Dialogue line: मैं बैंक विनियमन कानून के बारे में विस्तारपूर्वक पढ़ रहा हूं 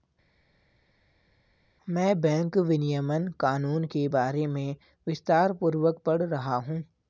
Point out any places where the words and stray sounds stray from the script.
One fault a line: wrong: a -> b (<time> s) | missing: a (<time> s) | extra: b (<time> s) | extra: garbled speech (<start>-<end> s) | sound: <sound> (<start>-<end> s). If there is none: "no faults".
no faults